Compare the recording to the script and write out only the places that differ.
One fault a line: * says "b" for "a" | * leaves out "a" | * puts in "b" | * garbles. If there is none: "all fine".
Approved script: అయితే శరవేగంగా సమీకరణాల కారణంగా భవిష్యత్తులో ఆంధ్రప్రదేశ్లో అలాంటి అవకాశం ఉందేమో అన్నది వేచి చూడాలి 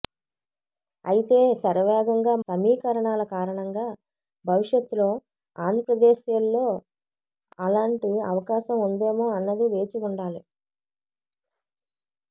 all fine